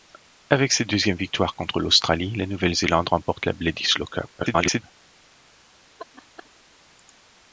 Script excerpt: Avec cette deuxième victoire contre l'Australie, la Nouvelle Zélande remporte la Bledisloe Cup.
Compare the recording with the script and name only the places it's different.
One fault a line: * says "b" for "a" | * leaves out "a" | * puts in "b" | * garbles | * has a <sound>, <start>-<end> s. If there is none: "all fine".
* garbles
* has a laugh, 6.0-6.5 s